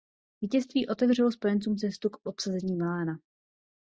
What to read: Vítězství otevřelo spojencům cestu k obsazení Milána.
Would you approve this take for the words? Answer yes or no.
yes